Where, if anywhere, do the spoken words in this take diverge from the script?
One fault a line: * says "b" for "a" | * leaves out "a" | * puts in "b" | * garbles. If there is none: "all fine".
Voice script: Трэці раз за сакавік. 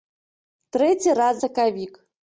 * leaves out "за"